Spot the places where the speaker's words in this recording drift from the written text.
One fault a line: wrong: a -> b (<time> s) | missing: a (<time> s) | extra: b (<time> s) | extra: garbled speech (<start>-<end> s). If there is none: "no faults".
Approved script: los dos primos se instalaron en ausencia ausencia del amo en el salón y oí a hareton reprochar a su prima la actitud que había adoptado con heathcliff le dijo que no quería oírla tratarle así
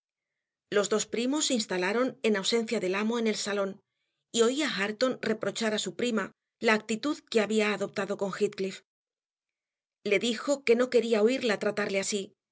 missing: ausencia (2.8 s)